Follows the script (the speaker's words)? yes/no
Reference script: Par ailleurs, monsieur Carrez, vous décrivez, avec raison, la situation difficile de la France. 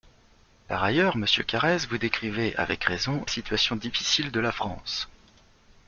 no